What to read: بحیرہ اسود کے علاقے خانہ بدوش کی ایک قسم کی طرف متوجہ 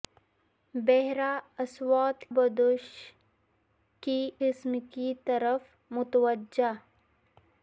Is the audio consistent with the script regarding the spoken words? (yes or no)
no